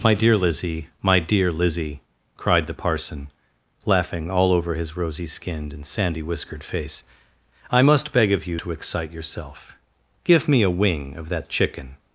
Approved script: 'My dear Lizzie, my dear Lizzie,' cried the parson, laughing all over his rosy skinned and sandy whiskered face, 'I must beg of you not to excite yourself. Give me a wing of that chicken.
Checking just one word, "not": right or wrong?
wrong